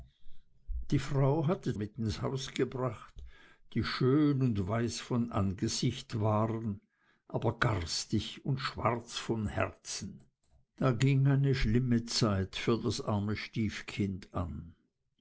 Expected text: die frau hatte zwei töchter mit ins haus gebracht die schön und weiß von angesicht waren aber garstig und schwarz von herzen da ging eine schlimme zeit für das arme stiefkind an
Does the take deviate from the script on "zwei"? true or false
true